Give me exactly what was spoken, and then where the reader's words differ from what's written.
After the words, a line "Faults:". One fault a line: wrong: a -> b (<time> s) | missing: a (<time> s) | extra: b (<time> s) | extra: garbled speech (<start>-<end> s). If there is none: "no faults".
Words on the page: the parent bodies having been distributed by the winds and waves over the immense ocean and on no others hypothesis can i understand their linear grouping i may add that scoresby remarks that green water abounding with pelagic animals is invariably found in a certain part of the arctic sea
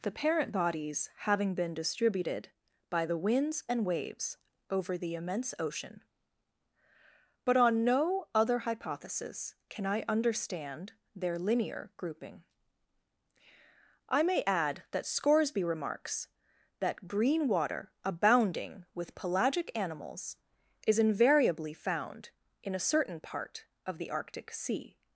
the parent bodies having been distributed by the winds and waves over the immense ocean but on no other hypothesis can i understand their linear grouping i may add that scoresby remarks that green water abounding with pelagic animals is invariably found in a certain part of the arctic sea
Faults:
wrong: and -> but (7.5 s)
wrong: others -> other (8.3 s)